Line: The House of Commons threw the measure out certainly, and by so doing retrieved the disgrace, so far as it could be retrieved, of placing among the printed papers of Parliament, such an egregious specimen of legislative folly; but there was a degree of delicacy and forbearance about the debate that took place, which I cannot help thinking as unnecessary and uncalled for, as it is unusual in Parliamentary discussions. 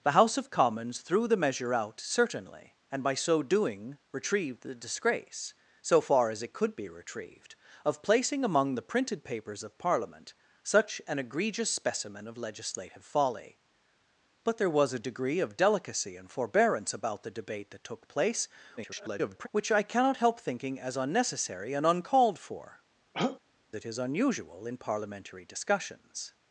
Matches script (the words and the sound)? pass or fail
fail